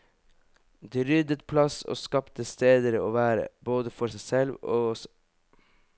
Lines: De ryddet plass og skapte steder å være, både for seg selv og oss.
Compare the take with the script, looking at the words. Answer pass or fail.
pass